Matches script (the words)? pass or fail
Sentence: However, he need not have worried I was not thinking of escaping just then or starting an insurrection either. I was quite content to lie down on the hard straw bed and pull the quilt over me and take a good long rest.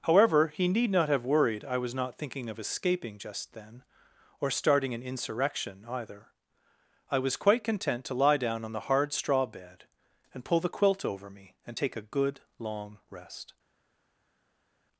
pass